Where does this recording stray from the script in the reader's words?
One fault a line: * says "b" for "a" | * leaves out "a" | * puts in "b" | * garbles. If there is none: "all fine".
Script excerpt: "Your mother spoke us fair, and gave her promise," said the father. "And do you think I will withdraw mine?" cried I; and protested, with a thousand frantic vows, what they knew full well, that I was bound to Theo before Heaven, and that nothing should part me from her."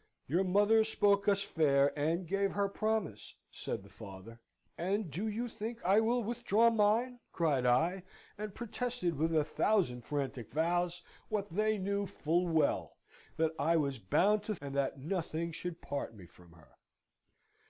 * leaves out "Theo before Heaven"